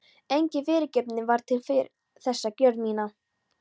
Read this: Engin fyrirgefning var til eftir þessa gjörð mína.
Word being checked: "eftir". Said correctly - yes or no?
no